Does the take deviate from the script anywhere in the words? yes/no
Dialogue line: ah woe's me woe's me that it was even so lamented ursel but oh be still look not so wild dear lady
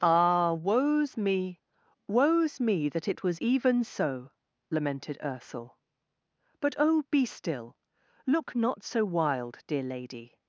no